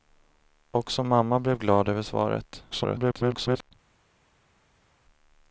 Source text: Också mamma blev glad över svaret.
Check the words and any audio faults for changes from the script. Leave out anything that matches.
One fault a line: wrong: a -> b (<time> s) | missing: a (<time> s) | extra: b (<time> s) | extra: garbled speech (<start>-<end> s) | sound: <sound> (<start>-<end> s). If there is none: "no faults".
extra: garbled speech (2.7-3.7 s)